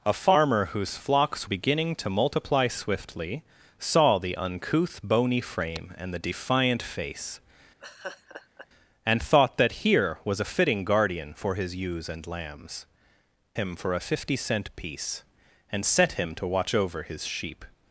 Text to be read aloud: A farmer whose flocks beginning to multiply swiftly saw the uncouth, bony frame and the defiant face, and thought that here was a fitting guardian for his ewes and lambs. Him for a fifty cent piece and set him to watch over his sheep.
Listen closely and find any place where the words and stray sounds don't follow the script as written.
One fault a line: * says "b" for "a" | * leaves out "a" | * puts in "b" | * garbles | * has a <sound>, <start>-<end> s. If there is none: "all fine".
* has a laugh, 7.8-8.7 s